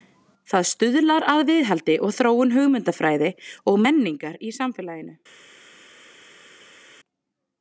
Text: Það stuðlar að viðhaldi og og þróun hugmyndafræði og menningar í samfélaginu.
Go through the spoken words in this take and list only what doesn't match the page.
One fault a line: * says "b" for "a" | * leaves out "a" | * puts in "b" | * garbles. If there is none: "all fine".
* leaves out "og"